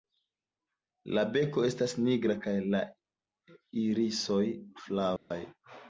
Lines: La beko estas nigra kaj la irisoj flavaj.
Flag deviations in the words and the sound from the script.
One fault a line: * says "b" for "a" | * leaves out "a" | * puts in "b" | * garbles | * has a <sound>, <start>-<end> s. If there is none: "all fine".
* has a dropout, 5.2-5.3 s